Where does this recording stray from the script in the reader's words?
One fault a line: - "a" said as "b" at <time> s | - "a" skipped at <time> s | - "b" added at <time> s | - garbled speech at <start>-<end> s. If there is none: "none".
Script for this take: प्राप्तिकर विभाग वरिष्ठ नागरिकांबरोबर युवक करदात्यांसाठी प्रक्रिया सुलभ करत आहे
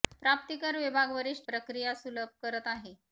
- "नागरिकांबरोबर युवक करदात्यांसाठी" skipped at 1.5 s